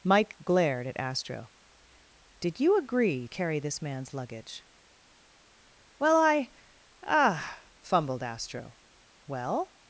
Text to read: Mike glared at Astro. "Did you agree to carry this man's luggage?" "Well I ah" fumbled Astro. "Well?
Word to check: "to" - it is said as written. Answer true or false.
false